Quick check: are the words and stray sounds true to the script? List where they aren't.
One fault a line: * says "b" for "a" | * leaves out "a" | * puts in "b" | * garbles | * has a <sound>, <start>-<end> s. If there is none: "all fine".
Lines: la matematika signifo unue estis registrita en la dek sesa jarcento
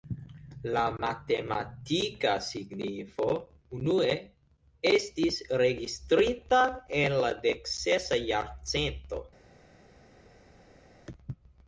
all fine